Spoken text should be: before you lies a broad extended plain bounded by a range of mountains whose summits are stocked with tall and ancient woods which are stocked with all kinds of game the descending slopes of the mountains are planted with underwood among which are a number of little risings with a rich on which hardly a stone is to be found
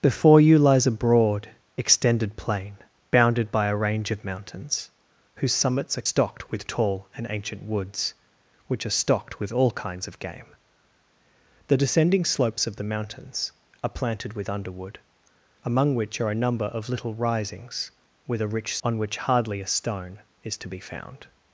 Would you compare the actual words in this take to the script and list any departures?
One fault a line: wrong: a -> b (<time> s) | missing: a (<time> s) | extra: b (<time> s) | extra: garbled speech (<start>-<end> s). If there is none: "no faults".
no faults